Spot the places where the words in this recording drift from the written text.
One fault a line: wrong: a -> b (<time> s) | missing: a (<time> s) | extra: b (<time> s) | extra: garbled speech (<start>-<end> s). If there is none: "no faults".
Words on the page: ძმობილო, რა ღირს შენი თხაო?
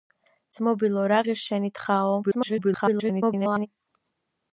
extra: garbled speech (2.2-3.7 s)